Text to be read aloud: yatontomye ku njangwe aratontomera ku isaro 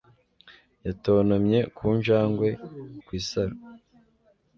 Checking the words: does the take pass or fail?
fail